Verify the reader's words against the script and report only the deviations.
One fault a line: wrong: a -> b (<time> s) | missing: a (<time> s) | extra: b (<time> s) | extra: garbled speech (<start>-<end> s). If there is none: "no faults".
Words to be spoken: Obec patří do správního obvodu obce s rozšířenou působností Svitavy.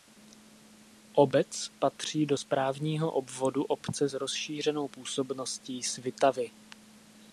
no faults